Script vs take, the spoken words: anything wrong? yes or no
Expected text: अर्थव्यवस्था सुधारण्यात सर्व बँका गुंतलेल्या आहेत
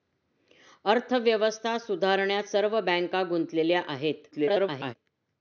yes